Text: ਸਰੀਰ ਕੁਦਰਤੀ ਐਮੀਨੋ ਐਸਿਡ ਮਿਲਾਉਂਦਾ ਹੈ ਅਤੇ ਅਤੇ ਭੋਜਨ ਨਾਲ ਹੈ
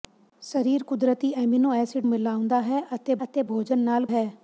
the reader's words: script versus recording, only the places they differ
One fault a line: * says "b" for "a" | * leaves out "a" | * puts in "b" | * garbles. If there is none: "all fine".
all fine